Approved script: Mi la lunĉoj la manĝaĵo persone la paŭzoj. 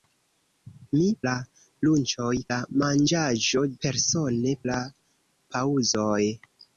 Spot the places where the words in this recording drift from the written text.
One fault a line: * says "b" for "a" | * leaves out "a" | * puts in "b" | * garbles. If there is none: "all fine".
all fine